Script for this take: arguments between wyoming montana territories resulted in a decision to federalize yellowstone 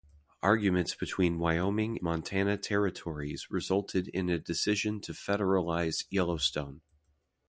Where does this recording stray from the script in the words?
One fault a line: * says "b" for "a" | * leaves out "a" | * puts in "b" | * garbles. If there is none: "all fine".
all fine